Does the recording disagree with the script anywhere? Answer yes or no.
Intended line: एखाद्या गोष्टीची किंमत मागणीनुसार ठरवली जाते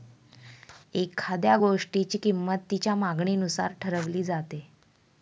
yes